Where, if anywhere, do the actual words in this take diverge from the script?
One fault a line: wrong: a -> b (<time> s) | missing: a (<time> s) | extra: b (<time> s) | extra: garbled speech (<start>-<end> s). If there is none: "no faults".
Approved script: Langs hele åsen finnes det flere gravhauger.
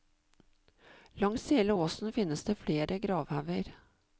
no faults